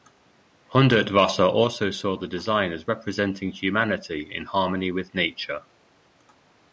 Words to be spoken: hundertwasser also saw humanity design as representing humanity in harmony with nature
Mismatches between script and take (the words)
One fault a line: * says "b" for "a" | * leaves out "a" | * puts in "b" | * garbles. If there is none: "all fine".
* says "the" for "humanity"